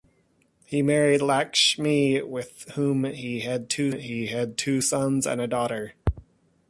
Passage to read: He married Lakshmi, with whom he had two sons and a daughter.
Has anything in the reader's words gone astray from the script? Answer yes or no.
yes